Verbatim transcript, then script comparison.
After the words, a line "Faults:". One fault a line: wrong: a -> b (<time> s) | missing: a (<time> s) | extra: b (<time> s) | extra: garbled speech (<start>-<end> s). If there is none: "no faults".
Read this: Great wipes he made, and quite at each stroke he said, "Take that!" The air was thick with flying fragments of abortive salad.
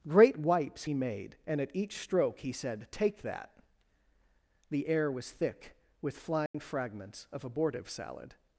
Great wipes he made, and at each stroke he said, "Take that!" The air was thick with flying fragments of abortive salad.
Faults:
missing: quite (1.6 s)